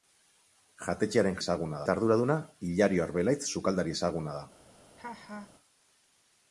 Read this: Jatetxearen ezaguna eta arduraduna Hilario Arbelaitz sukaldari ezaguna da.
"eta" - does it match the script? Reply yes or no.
yes